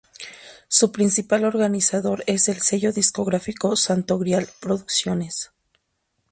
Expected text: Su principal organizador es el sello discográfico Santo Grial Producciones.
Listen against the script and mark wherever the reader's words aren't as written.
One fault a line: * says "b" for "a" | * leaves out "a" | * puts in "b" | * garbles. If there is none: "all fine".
all fine